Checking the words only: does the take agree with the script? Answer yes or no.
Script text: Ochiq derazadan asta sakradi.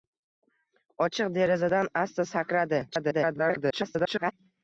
no